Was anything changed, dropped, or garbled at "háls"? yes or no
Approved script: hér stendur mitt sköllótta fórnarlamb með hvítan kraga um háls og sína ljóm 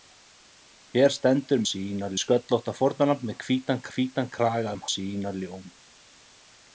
yes